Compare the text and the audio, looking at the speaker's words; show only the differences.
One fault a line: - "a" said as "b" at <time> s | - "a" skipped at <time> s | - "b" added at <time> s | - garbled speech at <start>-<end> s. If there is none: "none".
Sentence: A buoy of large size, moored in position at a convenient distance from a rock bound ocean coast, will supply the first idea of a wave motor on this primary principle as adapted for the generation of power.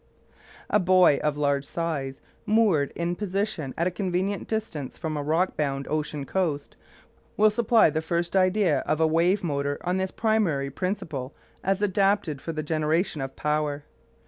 none